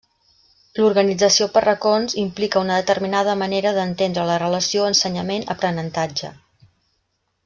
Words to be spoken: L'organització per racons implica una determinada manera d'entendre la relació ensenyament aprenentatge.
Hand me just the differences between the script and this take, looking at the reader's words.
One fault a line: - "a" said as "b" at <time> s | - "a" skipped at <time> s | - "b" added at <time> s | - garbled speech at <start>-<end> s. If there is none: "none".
none